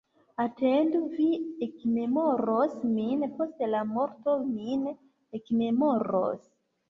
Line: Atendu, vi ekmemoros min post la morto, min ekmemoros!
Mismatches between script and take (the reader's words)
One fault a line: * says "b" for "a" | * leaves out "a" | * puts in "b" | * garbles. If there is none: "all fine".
all fine